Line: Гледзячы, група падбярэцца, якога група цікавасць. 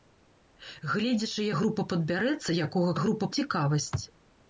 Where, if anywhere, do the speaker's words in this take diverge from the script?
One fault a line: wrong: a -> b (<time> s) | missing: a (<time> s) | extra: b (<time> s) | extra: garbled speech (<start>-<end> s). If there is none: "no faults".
no faults